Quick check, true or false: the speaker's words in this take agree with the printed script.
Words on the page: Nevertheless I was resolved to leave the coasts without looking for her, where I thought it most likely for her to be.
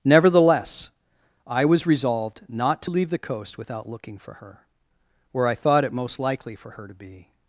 false